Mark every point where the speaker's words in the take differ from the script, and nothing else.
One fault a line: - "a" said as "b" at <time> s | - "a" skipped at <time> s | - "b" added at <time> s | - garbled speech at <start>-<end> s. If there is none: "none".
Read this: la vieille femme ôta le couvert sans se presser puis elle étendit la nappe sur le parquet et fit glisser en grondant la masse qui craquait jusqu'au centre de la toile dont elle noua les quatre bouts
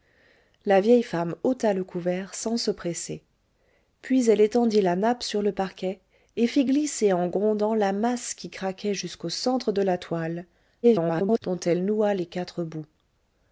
- garbled speech at 10.8-11.4 s